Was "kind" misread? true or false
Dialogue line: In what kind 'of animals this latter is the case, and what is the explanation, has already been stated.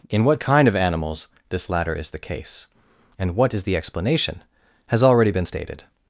false